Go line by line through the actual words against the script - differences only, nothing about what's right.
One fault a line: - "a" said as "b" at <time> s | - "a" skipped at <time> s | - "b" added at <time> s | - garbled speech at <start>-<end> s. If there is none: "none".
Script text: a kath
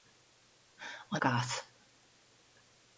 none